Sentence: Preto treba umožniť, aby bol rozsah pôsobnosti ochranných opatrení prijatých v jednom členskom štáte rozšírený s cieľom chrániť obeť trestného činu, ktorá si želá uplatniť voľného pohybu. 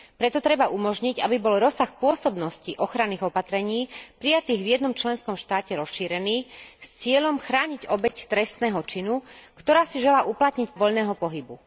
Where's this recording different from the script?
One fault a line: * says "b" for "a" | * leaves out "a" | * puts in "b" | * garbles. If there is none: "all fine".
all fine